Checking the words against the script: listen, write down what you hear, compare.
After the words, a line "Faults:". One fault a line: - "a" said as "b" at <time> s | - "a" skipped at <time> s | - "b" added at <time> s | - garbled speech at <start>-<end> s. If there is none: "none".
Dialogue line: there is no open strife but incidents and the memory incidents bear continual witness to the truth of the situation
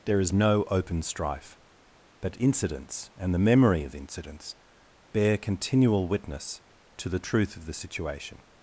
there is no open strife but incidents and the memory of incidents bear continual witness to the truth of the situation
Faults:
- "of" added at 3.8 s